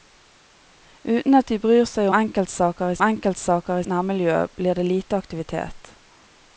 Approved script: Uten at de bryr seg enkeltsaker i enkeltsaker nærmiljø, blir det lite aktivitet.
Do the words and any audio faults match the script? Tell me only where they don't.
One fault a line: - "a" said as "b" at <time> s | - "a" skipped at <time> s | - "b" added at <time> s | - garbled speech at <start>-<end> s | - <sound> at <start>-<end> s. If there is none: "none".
none